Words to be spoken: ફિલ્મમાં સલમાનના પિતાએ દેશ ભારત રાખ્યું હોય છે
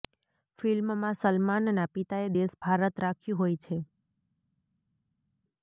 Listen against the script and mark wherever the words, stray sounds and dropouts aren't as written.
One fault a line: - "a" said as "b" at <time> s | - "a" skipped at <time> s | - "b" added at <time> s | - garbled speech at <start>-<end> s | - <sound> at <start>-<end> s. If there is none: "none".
none